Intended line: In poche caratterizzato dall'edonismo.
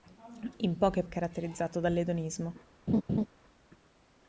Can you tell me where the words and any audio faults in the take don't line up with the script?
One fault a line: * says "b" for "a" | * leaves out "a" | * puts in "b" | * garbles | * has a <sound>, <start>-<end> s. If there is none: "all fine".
* has a laugh, 2.9-3.3 s